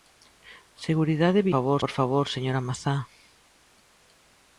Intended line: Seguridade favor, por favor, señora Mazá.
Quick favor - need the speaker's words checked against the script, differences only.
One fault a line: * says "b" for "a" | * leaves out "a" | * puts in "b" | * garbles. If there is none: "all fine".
all fine